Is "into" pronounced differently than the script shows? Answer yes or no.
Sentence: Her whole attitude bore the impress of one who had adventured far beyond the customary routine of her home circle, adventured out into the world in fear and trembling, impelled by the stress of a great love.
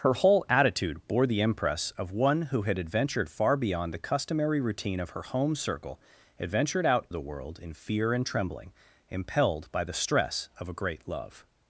yes